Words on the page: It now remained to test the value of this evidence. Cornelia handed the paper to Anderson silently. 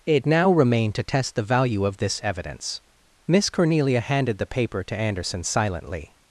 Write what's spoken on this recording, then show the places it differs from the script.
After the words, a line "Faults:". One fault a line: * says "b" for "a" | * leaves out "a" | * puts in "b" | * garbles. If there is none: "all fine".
It now remained to test the value of this evidence. Miss Cornelia handed the paper to Anderson silently.
Faults:
* puts in "Miss"